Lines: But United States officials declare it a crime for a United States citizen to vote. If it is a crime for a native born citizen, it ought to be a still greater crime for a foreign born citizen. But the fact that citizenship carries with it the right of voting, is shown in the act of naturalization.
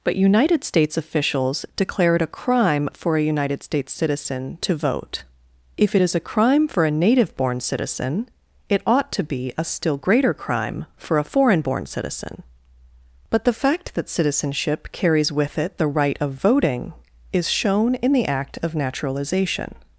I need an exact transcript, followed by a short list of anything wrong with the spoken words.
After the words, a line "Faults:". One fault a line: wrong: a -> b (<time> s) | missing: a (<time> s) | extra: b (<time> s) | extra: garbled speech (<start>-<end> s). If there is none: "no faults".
But United States officials declare it a crime for a United States citizen to vote. If it is a crime for a native born citizen, it ought to be a still greater crime for a foreign born citizen. But the fact that citizenship carries with it the right of voting, is shown in the act of naturalization.
Faults:
no faults